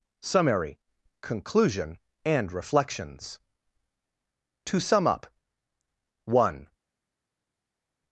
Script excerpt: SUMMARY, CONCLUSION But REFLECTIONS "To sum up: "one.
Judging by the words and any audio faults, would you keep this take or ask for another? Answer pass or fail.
fail